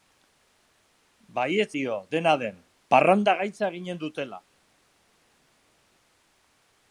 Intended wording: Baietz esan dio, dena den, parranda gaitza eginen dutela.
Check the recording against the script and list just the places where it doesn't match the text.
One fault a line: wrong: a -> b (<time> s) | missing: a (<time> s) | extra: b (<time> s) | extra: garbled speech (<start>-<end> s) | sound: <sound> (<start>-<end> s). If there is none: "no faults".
missing: esan (1.7 s)